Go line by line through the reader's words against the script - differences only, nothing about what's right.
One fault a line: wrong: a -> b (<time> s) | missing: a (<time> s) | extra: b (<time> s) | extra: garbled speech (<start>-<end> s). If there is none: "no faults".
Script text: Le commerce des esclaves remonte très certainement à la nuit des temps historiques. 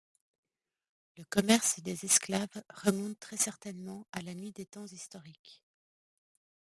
no faults